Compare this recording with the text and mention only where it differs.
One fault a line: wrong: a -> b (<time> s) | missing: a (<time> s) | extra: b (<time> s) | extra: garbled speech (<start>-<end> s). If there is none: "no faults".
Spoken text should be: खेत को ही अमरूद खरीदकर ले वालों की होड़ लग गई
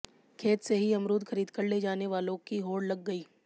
wrong: को -> से (0.6 s)
extra: जाने (1.8 s)